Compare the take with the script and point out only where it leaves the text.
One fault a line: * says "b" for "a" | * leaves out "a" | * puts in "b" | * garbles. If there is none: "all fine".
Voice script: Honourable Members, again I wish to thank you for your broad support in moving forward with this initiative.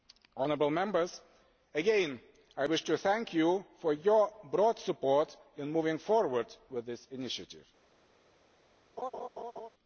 all fine